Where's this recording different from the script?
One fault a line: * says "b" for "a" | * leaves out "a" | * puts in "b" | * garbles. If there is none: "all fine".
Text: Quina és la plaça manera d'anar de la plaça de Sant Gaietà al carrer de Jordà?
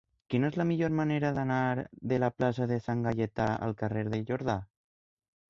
* says "millor" for "plaça"